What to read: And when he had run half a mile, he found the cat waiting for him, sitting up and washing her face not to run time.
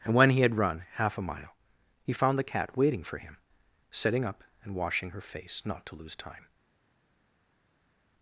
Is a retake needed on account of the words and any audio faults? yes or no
yes